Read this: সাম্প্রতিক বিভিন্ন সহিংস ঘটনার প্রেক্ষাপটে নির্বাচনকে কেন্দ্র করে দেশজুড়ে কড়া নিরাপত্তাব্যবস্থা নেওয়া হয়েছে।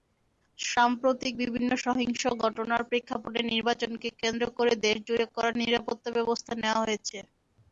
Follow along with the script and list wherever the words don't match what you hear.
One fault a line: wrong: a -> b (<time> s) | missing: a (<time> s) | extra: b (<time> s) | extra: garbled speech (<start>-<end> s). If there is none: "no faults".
no faults